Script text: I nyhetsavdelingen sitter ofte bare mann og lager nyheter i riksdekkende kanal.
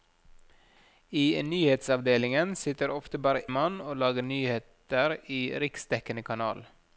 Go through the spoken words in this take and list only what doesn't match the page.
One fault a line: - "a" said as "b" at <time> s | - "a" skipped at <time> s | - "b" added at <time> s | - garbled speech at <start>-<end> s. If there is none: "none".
none